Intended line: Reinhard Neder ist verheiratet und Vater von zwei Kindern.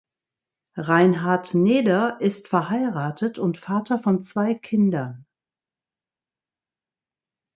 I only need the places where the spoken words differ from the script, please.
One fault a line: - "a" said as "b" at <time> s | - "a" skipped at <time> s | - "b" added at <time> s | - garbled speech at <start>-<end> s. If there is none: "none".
none